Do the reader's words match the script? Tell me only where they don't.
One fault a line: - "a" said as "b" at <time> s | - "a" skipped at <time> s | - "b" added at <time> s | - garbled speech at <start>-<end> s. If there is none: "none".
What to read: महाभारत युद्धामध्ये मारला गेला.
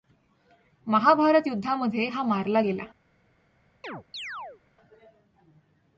- "हा" added at 2.1 s